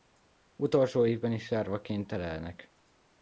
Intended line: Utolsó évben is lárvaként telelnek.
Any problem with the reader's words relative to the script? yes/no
no